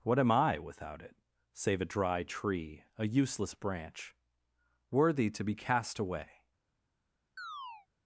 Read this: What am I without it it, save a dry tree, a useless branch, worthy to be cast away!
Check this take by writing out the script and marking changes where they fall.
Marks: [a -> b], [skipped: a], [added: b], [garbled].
What am I without it [skipped: it,] save a dry tree, a useless branch, worthy to be cast away!